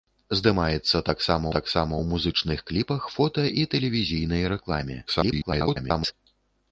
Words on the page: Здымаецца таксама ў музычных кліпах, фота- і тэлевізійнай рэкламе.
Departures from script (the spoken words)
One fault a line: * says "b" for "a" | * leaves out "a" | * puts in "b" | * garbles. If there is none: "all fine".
* puts in "таксама"
* garbles